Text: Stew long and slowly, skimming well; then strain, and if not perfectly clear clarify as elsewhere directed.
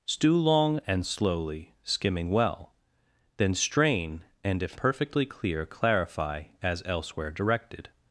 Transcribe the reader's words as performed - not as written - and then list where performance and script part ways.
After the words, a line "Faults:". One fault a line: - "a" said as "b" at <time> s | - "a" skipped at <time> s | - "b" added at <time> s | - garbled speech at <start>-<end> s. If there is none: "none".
Stew long and slowly, skimming well; then strain, and if perfectly clear clarify as elsewhere directed.
Faults:
- "not" skipped at 4.8 s